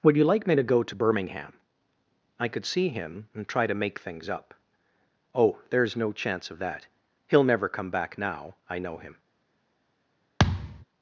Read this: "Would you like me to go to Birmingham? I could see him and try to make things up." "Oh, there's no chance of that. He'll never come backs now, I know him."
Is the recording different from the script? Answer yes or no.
yes